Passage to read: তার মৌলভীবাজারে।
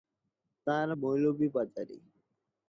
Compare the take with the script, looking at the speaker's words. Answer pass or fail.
pass